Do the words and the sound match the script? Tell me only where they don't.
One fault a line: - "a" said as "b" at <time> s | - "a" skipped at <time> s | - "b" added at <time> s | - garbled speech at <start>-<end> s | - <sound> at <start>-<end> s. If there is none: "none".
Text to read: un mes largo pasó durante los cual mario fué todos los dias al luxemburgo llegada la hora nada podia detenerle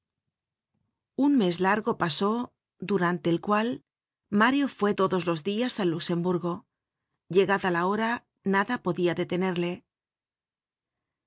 - "los" said as "el" at 3.3 s